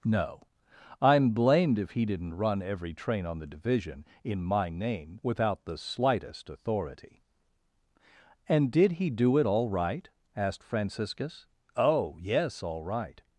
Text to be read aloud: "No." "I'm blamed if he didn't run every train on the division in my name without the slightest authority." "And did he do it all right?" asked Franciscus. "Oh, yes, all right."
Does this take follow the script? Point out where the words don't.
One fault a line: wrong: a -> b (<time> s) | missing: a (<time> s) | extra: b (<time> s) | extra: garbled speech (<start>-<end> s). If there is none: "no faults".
no faults